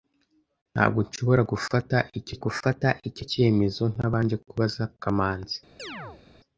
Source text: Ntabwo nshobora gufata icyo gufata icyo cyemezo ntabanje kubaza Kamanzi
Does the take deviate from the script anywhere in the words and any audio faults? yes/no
yes